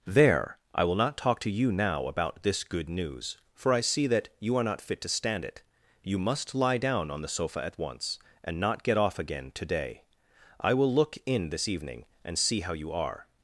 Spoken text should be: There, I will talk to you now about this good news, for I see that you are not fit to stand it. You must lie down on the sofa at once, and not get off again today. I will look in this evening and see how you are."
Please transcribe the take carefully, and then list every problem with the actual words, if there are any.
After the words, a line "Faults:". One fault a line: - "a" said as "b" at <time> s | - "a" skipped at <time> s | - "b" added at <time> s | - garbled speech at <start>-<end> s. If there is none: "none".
There, I will not talk to you now about this good news, for I see that you are not fit to stand it. You must lie down on the sofa at once, and not get off again today. I will look in this evening and see how you are."
Faults:
- "not" added at 0.9 s